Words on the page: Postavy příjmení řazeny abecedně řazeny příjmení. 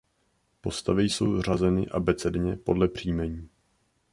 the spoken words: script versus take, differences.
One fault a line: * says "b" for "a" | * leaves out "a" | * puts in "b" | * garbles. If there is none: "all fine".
* says "jsou" for "příjmení"
* says "podle" for "řazeny"